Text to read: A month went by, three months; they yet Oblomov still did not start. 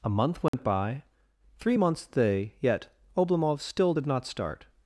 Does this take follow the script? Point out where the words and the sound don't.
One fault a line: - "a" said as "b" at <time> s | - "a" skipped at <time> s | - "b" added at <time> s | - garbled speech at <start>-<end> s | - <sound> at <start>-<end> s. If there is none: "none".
- dropout at 0.5-0.5 s